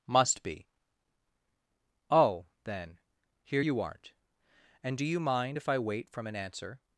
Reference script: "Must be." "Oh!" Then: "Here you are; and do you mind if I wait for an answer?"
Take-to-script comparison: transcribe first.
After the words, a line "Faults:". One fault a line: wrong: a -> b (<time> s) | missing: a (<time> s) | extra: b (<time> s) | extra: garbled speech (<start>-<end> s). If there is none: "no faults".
"Must be." "Oh!" Then: "Here you aren't; and do you mind if I wait from an answer?"
Faults:
wrong: are -> aren't (3.8 s)
wrong: for -> from (6.1 s)